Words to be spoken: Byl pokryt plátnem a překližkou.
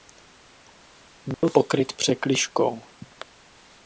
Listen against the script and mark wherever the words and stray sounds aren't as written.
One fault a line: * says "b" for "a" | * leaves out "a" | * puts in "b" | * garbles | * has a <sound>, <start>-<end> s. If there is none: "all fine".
* has a dropout, 1.3-1.4 s
* leaves out "plátnem a"